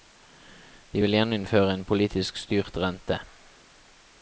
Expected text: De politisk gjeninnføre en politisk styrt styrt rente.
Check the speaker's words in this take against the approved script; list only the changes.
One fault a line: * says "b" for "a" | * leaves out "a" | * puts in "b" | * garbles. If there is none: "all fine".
* says "vil" for "politisk"
* leaves out "styrt"